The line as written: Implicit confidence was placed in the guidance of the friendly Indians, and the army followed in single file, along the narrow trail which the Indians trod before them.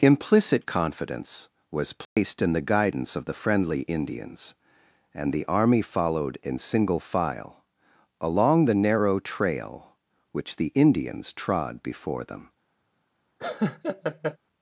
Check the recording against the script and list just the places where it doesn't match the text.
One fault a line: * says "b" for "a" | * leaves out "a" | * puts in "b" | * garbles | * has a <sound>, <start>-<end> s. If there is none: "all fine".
* has a dropout, 2.0-2.2 s
* has a laugh, 13.4-14.4 s